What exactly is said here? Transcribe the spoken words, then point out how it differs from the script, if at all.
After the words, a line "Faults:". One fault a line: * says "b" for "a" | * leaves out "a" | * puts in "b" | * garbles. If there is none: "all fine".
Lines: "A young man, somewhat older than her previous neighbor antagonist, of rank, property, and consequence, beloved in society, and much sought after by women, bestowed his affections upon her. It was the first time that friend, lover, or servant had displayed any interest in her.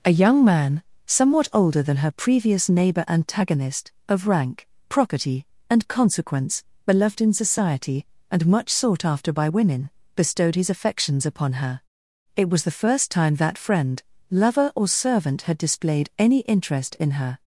"A young man, somewhat older than her previous neighbor antagonist, of rank, property, and consequence, beloved in society, and much sought after by women, bestowed his affections upon her. It was the first time that friend, lover, or servant had displayed any interest in her.
Faults:
all fine